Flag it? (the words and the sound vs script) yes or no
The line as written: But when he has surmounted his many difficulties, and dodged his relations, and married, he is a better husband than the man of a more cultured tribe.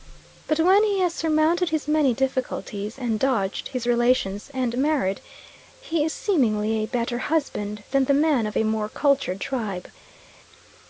yes